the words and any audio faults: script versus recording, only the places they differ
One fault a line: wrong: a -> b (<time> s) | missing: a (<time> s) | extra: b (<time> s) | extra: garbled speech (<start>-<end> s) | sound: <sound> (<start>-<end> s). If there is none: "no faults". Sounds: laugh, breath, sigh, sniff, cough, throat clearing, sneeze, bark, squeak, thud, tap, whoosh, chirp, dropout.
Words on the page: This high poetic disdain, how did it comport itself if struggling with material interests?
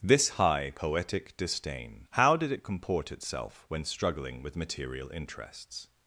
wrong: if -> when (3.7 s)